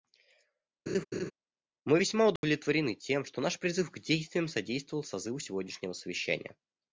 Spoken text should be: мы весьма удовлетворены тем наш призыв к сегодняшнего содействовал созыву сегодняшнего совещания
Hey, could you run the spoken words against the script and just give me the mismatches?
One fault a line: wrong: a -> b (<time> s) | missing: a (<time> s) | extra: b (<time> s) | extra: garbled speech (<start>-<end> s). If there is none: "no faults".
extra: что (3.2 s)
wrong: сегодняшнего -> действиям (4.0 s)